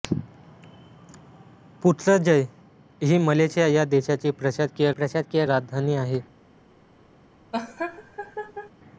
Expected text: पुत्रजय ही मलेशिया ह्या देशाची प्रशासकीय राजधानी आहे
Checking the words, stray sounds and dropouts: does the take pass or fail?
fail